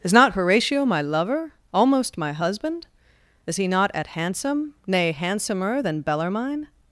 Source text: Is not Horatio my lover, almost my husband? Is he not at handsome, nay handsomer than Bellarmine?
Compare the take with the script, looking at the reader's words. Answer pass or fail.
pass